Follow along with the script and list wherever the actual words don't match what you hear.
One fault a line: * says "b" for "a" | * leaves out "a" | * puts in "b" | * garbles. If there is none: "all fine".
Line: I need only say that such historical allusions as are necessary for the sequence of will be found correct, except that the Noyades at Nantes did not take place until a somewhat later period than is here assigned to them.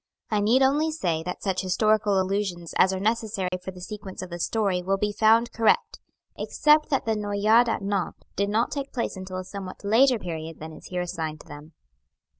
* puts in "the story"